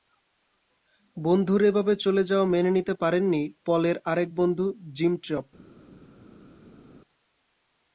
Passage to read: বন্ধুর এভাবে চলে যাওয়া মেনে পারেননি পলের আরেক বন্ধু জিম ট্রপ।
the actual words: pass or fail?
fail